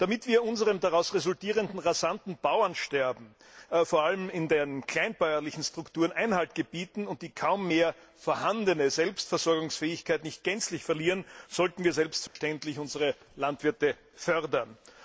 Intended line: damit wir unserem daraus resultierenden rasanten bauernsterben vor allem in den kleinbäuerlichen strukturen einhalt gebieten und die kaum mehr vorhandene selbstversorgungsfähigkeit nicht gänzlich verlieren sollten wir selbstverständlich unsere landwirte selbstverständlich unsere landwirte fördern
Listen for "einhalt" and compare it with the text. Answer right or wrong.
right